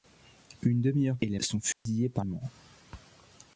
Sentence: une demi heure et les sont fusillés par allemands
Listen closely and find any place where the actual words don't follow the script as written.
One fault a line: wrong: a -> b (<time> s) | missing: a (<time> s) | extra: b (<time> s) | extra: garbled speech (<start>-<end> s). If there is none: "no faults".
no faults